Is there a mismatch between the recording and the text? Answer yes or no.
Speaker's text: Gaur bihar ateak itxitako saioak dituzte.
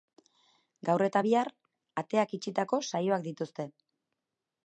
yes